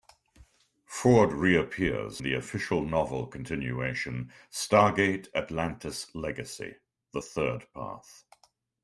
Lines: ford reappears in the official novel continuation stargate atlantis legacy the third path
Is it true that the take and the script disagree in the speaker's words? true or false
true